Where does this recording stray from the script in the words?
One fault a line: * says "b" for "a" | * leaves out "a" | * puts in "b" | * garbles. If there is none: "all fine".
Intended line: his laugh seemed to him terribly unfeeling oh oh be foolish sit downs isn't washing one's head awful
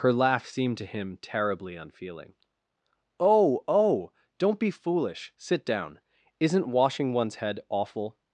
* says "her" for "his"
* puts in "don't"
* says "down" for "downs"